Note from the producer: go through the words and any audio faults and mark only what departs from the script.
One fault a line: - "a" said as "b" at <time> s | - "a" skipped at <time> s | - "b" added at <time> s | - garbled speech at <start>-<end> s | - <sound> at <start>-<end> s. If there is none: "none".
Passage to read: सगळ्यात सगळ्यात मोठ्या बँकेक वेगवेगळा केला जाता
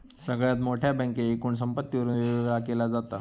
- "सगळ्यात" skipped at 0.6 s
- "एकूण संपत्तीवरून" added at 1.4 s